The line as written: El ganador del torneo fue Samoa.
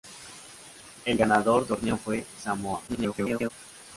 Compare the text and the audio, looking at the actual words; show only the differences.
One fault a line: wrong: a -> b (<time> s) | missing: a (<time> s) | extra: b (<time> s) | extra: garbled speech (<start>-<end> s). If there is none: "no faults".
missing: del (1.7 s)
extra: garbled speech (2.9-3.5 s)